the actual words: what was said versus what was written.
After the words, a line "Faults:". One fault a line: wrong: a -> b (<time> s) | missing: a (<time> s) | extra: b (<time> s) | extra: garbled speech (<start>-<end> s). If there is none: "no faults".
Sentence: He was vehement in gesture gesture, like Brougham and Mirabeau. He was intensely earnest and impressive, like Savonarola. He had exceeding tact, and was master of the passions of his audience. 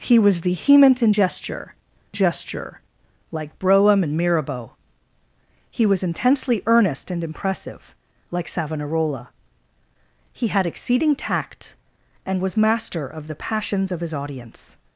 He was vehement in gesture gesture, like Brougham and Mirabeau. He was intensely earnest and impressive, like Savonarola. He had exceeding tact, and was master of the passions of his audience.
Faults:
no faults